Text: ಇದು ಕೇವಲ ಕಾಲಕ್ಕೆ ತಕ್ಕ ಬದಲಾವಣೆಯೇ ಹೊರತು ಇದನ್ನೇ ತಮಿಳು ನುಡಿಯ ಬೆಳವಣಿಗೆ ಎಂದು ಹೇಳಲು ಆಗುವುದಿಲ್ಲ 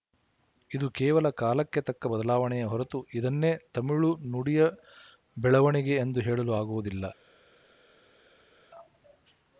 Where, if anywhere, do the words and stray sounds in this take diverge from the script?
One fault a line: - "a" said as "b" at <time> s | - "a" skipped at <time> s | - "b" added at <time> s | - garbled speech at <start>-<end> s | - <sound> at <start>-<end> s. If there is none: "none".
none